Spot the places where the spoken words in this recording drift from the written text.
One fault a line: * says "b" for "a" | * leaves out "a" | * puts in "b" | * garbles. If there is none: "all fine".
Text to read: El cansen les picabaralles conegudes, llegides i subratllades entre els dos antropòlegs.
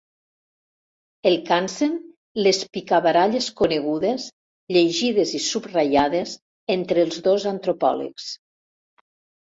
all fine